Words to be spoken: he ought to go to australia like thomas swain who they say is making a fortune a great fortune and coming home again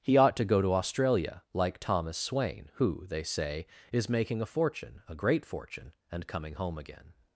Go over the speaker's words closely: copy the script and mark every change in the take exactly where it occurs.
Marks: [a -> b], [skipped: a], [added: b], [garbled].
he ought to go to australia like thomas swain who they say is making a fortune a great fortune and coming home again